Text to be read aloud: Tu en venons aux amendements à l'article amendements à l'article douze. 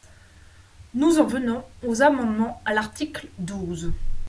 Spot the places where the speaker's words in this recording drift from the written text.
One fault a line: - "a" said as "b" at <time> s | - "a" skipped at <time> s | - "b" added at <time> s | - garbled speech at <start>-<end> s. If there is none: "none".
- "Tu" said as "Nous" at 0.9 s
- "amendements à l'article" skipped at 3.3 s